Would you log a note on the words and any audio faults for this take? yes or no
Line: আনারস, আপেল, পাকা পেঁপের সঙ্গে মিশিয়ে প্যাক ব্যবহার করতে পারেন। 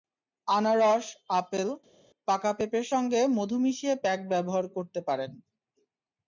yes